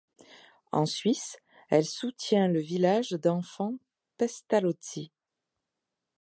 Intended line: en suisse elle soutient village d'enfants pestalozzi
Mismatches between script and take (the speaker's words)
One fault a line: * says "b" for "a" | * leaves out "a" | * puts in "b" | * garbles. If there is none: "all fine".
* puts in "le"